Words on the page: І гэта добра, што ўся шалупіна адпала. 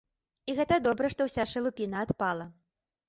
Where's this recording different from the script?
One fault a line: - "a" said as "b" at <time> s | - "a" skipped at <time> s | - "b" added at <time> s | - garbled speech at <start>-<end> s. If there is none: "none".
none